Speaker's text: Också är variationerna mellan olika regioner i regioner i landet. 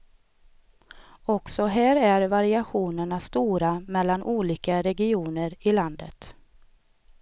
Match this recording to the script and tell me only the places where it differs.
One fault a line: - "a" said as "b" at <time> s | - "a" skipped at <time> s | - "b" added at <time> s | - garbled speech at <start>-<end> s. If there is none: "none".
- "här" added at 1.6 s
- "stora" added at 3.2 s
- "regioner i" skipped at 5.7 s